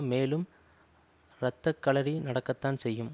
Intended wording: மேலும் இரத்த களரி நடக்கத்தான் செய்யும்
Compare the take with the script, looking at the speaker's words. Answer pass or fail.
pass